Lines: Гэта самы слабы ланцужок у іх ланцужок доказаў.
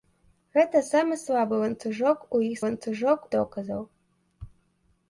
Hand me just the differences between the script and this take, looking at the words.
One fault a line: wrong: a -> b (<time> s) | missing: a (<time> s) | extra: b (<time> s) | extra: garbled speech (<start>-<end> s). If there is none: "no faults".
no faults